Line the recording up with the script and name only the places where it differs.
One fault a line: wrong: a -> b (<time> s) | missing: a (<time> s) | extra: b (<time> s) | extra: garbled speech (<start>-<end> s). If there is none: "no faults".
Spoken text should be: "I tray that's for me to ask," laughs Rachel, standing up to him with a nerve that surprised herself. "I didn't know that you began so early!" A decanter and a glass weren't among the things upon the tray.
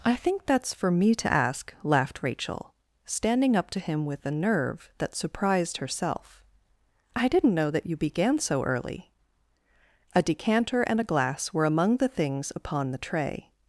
wrong: tray -> think (0.1 s)
wrong: laughs -> laughed (1.8 s)
wrong: weren't -> were (11.5 s)